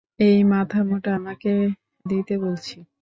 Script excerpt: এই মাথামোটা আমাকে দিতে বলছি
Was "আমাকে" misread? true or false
false